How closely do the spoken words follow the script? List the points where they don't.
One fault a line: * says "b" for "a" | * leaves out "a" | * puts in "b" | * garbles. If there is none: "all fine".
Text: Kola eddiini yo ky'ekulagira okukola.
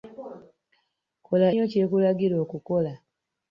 * leaves out "eddiini"